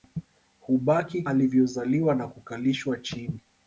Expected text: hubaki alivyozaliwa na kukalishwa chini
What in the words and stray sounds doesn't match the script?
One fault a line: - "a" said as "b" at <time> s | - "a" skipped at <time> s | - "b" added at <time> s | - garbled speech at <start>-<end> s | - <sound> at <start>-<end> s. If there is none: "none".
none